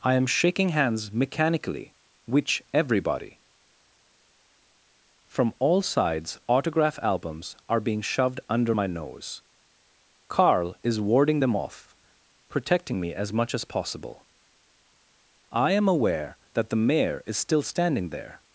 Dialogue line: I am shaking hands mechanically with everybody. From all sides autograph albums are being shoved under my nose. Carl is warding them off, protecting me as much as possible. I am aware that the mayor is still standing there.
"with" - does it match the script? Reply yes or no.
no